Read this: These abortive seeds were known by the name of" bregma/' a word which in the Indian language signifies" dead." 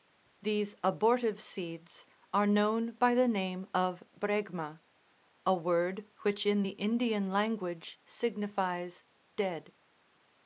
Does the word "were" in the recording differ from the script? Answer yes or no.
yes